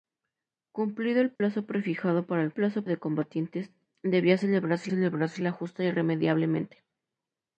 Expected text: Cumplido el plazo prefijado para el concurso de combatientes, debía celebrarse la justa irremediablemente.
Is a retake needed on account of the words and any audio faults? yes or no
yes